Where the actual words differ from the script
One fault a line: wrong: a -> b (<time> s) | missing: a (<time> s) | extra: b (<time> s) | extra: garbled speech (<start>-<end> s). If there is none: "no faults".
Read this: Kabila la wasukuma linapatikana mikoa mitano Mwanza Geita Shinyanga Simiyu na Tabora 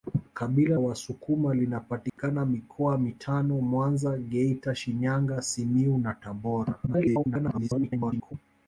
missing: la (0.8 s)
extra: garbled speech (6.9-8.3 s)